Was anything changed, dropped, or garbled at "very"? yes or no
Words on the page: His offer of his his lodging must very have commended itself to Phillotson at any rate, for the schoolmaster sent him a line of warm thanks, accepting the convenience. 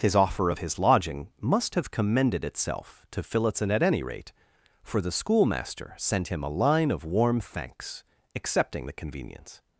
yes